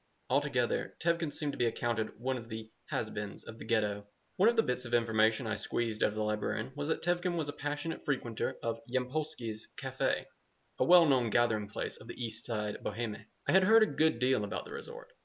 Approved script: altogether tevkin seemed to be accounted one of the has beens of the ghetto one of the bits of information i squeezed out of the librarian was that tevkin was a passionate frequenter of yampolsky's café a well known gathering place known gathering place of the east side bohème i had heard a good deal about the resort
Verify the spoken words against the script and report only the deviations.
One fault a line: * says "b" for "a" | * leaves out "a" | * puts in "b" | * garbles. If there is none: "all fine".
* leaves out "known gathering place"